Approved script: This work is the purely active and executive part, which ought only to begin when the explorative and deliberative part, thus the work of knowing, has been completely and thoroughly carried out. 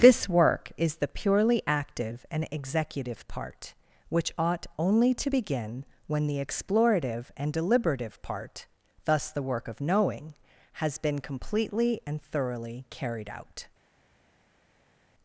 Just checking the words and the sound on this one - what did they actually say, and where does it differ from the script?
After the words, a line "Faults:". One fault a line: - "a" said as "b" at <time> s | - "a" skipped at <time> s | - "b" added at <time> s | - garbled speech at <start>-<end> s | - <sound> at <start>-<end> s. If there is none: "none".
This work is the purely active and executive part, which ought only to begin when the explorative and deliberative part, thus the work of knowing, has been completely and thoroughly carried out.
Faults:
none